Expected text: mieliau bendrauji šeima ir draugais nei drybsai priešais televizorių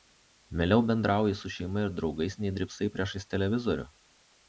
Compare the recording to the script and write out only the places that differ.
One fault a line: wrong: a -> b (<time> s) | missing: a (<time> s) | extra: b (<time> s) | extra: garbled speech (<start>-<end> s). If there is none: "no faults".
extra: su (1.4 s)